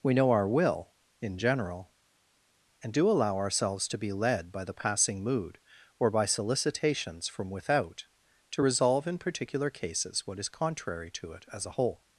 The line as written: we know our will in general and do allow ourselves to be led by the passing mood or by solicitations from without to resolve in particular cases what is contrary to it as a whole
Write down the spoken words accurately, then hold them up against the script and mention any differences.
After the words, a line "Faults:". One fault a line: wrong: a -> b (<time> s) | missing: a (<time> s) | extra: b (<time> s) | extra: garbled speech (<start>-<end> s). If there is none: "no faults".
we know our will in general and do allow ourselves to be led by the passing mood or by solicitations from without to resolve in particular cases what is contrary to it as a whole
Faults:
no faults